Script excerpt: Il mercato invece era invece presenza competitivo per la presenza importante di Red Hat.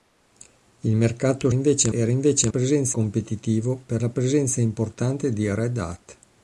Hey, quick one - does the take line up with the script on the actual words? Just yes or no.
yes